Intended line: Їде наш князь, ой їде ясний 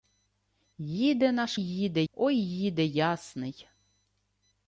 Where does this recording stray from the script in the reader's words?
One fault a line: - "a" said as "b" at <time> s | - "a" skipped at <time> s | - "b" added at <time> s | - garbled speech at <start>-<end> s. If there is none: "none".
- "князь" said as "їде" at 1.5 s